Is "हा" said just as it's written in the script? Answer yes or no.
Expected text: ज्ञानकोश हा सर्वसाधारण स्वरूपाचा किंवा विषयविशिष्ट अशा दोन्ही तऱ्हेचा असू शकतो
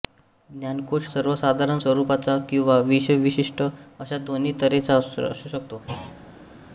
no